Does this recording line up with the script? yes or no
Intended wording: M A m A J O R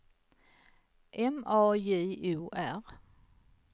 no